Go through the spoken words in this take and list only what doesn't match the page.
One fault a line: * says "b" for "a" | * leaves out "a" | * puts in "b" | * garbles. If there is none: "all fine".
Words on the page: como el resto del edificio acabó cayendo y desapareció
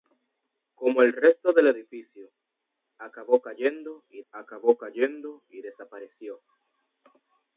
* puts in "acabó cayendo y"